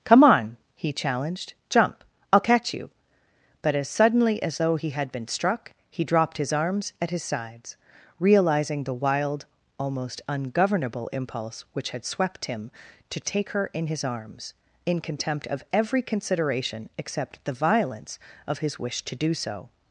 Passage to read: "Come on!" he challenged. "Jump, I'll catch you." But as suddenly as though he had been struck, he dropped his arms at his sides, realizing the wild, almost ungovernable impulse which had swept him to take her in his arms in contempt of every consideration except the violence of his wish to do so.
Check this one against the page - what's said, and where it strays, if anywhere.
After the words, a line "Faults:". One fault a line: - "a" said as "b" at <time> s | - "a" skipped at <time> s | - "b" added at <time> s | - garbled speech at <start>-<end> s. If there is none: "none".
"Come on!" he challenged. "Jump, I'll catch you." But as suddenly as though he had been struck, he dropped his arms at his sides, realizing the wild, almost ungovernable impulse which had swept him to take her in his arms in contempt of every consideration except the violence of his wish to do so.
Faults:
none